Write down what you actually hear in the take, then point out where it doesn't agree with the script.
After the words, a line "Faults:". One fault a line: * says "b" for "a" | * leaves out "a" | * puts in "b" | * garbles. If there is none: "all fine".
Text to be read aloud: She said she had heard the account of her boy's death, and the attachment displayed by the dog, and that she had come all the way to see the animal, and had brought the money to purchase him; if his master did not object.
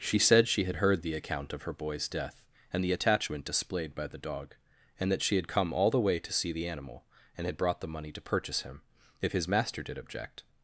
She said she had heard the account of her boy's death, and the attachment displayed by the dog, and that she had come all the way to see the animal, and had brought the money to purchase him; if his master did object.
Faults:
* leaves out "not"